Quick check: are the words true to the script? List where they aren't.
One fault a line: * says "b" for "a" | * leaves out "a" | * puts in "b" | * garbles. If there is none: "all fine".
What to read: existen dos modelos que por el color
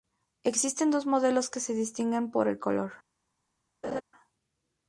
* puts in "se distinguen"